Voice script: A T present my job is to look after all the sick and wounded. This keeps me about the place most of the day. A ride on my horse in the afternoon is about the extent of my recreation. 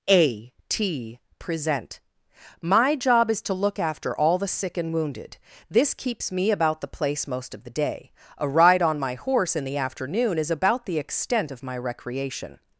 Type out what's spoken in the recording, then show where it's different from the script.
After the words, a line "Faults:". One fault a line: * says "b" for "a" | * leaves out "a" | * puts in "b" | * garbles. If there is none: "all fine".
A T present my job is to look after all the sick and wounded. This keeps me about the place most of the day. A ride on my horse in the afternoon is about the extent of my recreation.
Faults:
all fine